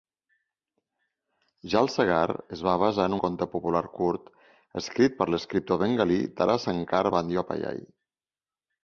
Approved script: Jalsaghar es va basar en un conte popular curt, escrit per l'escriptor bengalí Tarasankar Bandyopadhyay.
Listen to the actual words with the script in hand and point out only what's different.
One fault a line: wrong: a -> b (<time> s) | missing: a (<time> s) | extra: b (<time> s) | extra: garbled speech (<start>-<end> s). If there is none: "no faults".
missing: un (3.1 s)